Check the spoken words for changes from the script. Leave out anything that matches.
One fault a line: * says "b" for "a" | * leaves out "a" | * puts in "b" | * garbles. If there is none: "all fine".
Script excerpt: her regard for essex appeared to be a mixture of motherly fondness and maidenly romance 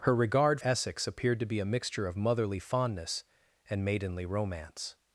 * leaves out "for"